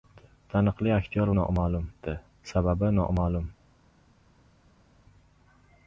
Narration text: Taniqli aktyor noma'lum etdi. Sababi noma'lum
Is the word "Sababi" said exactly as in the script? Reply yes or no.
yes